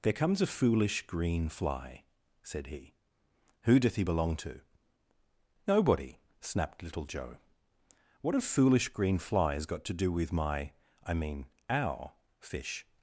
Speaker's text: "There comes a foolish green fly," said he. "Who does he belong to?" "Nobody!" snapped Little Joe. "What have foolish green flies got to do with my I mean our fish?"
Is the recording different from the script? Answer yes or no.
yes